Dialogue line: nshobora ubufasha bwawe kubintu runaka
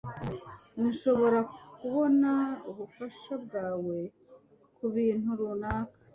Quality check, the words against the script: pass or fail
fail